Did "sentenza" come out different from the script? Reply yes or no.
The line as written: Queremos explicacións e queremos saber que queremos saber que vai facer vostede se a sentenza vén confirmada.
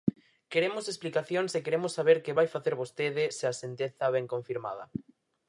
no